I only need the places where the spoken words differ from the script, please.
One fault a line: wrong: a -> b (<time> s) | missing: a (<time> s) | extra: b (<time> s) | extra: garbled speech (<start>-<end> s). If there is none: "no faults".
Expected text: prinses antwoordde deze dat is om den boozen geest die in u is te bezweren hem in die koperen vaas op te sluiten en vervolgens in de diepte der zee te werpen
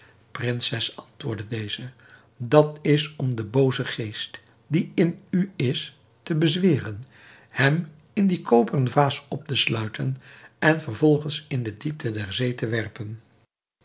no faults